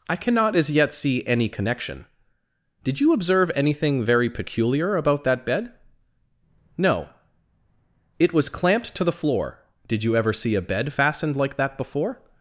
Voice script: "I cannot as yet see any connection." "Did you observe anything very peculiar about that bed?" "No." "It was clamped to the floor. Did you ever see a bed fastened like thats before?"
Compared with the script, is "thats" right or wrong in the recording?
wrong